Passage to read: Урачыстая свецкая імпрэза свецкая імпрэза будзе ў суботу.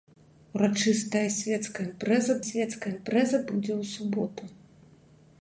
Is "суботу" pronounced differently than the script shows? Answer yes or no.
no